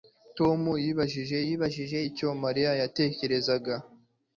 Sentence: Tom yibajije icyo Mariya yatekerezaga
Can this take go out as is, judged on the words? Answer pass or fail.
fail